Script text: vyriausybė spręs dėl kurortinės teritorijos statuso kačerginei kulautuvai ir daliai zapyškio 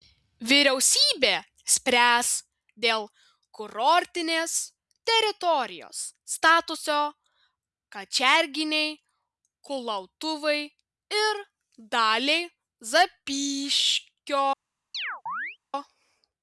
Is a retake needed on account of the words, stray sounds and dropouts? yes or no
yes